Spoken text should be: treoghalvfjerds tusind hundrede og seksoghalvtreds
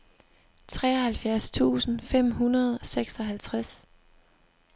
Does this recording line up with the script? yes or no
no